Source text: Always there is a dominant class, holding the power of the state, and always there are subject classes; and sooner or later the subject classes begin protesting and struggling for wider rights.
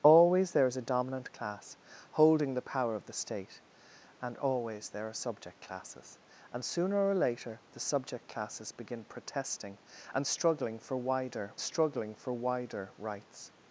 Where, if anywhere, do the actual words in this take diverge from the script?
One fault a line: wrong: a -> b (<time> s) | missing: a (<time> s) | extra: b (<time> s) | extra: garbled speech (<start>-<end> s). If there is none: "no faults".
extra: struggling for wider (11.6 s)